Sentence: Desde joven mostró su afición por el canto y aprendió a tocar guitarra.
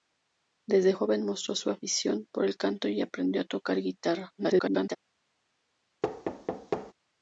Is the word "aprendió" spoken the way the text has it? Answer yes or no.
yes